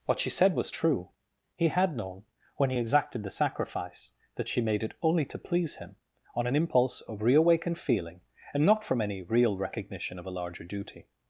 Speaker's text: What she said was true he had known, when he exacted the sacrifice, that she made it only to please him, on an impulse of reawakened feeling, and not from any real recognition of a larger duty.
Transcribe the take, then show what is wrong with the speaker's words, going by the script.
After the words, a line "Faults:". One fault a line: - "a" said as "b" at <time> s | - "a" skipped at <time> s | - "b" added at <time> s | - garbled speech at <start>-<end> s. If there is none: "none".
What she said was true he had known, when he exacted the sacrifice, that she made it only to please him, on an impulse of reawakened feeling, and not from any real recognition of a larger duty.
Faults:
none